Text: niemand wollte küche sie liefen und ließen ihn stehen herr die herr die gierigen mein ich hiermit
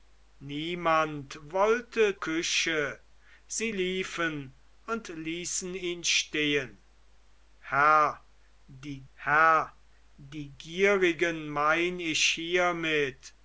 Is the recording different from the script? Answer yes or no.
no